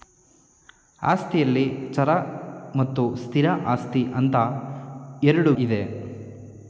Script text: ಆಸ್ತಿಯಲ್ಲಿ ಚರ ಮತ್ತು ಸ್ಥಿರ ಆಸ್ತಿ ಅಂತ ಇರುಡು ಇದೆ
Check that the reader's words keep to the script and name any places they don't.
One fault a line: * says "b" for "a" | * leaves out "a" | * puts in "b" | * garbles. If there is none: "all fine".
all fine